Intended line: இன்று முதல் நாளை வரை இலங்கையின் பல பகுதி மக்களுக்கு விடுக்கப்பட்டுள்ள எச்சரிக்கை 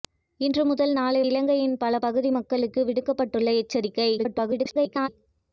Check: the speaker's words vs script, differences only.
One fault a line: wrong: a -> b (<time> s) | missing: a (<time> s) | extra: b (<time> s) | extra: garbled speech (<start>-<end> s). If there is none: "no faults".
missing: வரை (1.2 s)
extra: garbled speech (4.2-5.1 s)